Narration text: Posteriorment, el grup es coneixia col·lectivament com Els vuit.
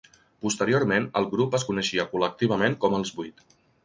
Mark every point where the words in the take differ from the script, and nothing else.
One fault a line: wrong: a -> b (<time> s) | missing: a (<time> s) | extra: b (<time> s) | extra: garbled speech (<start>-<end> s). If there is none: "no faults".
no faults